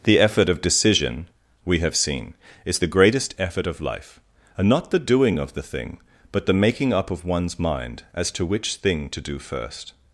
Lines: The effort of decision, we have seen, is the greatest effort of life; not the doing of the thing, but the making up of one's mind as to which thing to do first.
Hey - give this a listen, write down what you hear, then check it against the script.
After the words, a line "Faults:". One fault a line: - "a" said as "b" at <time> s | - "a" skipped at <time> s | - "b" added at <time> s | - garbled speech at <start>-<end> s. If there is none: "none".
The effort of decision, we have seen, is the greatest effort of life; and not the doing of the thing, but the making up of one's mind as to which thing to do first.
Faults:
- "and" added at 4.6 s